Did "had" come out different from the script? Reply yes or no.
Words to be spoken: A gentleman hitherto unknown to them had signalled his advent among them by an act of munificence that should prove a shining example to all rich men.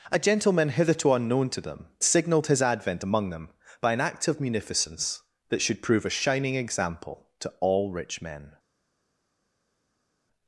yes